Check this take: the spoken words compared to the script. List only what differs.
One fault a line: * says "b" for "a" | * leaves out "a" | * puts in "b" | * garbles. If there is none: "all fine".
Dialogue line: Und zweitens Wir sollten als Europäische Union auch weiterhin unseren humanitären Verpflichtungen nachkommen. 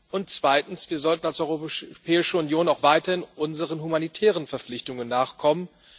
all fine